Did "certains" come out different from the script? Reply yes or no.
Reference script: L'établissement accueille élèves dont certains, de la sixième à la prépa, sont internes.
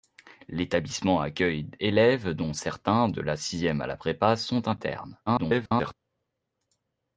no